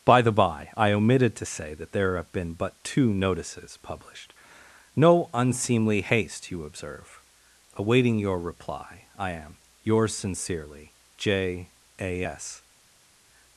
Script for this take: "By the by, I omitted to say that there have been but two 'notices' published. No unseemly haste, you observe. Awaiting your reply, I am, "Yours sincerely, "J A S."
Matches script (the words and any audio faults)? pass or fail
pass